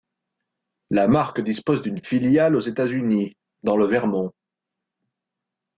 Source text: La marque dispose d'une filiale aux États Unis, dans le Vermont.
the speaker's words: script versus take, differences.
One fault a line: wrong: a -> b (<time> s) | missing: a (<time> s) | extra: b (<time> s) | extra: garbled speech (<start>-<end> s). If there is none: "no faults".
no faults